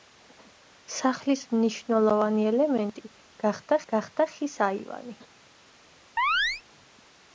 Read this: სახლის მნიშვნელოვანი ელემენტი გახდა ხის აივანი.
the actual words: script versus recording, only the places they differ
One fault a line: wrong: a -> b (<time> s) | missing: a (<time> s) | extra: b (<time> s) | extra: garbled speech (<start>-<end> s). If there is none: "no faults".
extra: გახდა (3.9 s)